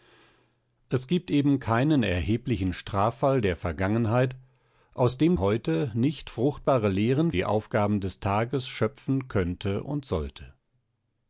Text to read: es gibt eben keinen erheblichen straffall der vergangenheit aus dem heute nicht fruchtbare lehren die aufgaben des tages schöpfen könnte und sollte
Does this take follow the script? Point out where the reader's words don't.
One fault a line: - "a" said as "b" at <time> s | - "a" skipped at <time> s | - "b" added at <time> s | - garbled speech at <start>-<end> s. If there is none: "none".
none